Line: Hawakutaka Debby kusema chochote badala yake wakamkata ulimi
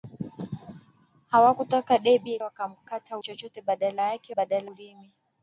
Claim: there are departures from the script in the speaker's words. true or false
true